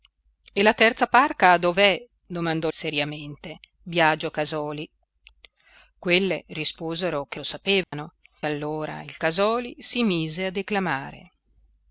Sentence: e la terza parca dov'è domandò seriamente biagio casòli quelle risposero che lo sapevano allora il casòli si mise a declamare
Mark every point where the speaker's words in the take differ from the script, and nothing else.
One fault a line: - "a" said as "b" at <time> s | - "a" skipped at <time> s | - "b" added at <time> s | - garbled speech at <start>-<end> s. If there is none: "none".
none